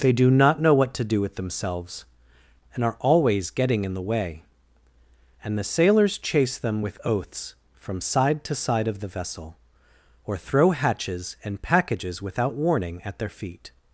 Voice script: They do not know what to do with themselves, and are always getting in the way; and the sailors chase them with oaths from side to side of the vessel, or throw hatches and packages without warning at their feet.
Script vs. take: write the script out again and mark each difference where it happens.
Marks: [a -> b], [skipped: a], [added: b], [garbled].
They do not know what to do with themselves, and are always getting in the way; and the sailors chase them with oaths from side to side of the vessel, or throw hatches and packages without warning at their feet.